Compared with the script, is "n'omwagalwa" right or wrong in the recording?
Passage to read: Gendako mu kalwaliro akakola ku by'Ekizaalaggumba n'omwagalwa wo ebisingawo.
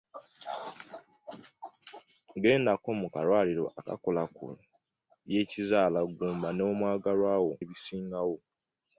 right